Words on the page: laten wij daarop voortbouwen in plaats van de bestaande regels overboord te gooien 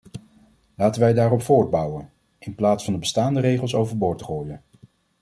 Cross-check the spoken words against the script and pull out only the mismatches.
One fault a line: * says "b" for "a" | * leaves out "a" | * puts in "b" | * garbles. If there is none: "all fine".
all fine